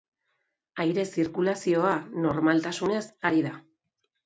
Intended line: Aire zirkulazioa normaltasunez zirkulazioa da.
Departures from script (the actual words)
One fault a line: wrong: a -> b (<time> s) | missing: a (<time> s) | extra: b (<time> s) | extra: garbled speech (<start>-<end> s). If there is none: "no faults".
wrong: zirkulazioa -> ari (3.3 s)